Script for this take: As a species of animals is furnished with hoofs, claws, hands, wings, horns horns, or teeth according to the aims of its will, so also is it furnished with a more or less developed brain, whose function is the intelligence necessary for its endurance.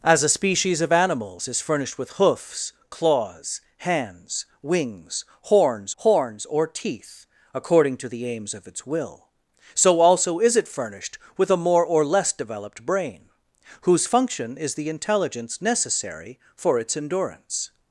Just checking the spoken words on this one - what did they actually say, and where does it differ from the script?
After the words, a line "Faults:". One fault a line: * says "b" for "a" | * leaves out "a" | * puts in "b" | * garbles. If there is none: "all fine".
As a species of animals is furnished with hoofs, claws, hands, wings, horns horns, or teeth according to the aims of its will, so also is it furnished with a more or less developed brain, whose function is the intelligence necessary for its endurance.
Faults:
all fine